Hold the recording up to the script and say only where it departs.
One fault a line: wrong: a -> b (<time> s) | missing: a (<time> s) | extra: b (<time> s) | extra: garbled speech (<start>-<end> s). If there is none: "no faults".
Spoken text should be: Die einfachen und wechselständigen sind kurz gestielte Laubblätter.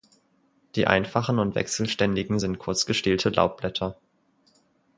no faults